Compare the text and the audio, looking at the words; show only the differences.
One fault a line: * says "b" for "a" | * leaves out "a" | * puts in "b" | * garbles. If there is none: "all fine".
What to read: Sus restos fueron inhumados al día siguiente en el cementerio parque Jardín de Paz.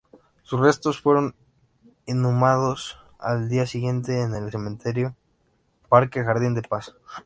all fine